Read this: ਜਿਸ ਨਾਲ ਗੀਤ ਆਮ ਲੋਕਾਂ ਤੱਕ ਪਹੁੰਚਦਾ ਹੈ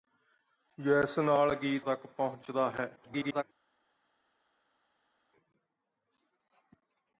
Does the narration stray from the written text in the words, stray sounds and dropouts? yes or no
yes